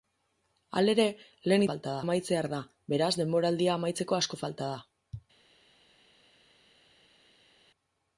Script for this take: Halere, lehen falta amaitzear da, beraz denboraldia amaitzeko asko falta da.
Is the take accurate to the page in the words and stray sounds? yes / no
yes